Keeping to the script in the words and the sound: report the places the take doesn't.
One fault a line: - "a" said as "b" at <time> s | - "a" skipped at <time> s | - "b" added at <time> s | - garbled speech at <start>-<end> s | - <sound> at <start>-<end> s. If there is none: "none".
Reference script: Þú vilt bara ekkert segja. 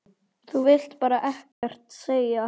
- dropout at 1.5-1.6 s